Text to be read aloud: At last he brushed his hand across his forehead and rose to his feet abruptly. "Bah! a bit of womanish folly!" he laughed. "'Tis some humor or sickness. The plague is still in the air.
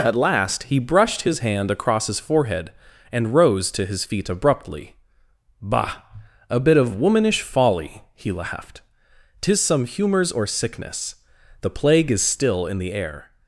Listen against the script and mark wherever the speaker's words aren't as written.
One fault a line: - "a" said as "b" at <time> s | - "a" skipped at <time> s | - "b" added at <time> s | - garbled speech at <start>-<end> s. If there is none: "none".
- "humor" said as "humors" at 9.8 s